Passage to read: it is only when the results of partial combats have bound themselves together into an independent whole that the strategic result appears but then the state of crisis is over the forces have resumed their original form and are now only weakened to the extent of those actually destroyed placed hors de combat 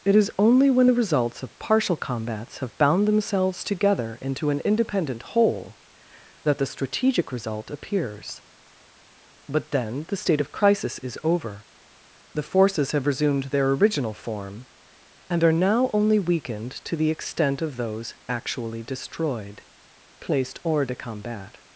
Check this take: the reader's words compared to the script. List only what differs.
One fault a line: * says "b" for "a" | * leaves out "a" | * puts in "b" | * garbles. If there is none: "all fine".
all fine